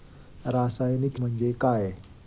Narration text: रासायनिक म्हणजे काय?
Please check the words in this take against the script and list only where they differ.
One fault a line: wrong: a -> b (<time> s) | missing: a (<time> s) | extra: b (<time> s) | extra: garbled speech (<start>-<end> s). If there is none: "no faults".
no faults